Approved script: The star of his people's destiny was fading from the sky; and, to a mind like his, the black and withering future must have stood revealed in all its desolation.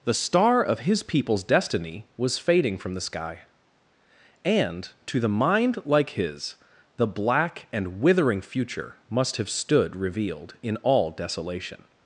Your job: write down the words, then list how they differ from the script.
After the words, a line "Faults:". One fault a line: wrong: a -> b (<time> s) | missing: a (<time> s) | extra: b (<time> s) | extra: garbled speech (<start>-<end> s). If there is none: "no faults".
The star of his people's destiny was fading from the sky; and, to the mind like his, the black and withering future must have stood revealed in all desolation.
Faults:
wrong: a -> the (5.2 s)
missing: its (11.1 s)